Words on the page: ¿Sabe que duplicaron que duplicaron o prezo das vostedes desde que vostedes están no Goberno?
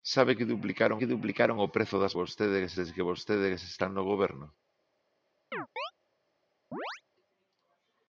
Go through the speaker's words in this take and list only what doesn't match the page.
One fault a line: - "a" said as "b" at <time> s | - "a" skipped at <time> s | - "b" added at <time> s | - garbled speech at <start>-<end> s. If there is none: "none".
none